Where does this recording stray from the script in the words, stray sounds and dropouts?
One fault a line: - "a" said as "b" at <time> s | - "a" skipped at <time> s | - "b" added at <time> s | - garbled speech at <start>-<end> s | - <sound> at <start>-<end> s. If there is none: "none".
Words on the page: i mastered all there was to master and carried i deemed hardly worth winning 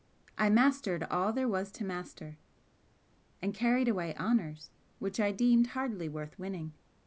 - "away honours which" added at 3.9 s